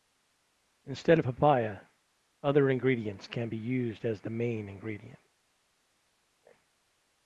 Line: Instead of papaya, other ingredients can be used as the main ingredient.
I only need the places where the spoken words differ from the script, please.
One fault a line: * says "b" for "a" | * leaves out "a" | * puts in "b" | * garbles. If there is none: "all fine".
all fine